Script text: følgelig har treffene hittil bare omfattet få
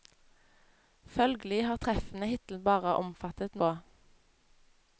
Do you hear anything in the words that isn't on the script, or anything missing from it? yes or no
no